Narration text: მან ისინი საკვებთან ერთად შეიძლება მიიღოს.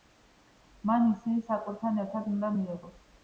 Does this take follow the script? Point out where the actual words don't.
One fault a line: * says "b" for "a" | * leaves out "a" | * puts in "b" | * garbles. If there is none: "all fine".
* says "უნდა" for "შეიძლება"